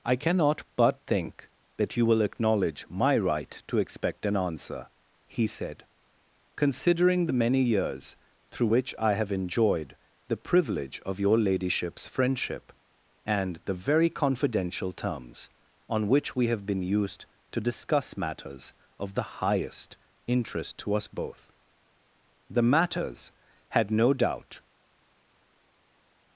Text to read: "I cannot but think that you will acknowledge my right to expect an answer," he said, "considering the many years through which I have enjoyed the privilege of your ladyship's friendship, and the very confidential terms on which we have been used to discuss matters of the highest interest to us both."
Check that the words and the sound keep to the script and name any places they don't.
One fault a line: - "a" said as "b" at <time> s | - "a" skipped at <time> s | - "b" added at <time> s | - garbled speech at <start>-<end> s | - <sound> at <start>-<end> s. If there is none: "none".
- "The matters had no doubt" added at 22.5 s